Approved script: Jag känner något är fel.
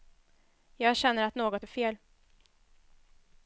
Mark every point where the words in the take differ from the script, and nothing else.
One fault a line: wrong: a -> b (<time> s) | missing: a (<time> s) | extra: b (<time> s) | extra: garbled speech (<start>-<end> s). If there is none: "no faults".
extra: att (1.2 s)